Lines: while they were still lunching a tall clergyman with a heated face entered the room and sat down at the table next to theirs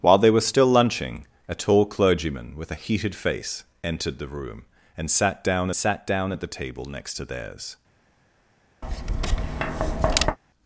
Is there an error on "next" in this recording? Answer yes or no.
no